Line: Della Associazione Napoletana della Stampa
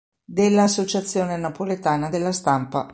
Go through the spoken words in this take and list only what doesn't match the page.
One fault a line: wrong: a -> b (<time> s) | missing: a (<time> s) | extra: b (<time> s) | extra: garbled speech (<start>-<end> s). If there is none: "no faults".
no faults